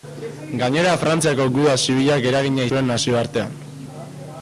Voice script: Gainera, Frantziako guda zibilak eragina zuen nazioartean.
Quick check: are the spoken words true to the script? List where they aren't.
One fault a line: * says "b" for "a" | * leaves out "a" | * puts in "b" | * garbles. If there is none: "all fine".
all fine